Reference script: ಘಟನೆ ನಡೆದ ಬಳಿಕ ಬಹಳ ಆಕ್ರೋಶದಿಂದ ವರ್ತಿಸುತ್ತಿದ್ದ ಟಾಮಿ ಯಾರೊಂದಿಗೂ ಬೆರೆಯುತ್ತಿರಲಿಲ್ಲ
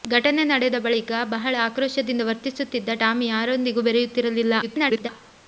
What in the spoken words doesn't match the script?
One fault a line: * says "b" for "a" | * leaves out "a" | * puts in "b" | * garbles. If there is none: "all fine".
* garbles